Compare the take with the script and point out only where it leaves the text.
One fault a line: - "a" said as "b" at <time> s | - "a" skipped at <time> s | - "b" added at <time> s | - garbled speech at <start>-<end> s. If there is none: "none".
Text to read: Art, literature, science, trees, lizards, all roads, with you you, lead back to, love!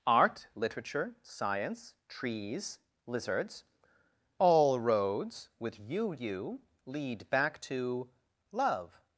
none